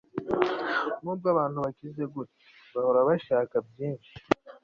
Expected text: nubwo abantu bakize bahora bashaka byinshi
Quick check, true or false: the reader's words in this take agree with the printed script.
false